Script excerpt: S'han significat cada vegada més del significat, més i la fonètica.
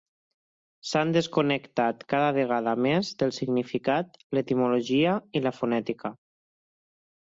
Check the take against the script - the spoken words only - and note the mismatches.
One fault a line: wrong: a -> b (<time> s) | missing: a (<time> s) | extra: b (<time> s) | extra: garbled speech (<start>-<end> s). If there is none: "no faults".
wrong: significat -> desconnectat (1.2 s)
wrong: més -> l'etimologia (4.4 s)